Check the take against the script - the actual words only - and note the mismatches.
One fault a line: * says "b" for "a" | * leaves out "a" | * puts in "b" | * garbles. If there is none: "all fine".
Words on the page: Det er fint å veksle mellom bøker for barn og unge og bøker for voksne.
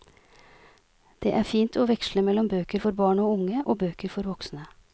all fine